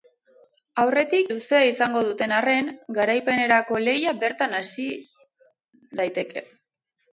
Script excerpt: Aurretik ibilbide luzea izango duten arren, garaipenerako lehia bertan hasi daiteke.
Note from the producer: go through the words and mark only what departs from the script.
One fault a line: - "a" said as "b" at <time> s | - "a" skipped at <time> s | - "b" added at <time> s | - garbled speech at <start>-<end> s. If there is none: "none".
- "ibilbide" skipped at 1.3 s